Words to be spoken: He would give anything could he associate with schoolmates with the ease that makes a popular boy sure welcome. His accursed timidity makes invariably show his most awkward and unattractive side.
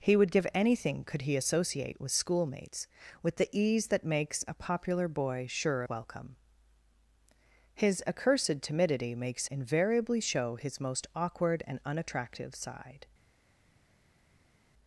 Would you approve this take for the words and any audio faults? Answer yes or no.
yes